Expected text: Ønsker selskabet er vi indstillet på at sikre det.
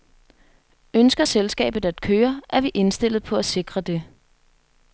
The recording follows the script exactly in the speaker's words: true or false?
false